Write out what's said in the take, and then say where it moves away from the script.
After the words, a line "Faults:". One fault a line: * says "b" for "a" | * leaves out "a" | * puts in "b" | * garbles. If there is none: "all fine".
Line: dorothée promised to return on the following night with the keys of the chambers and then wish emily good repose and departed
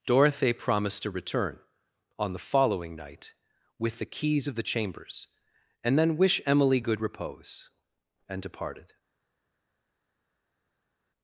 dorothée promised to return on the following night with the keys of the chambers and then wish emily good repose and departed
Faults:
all fine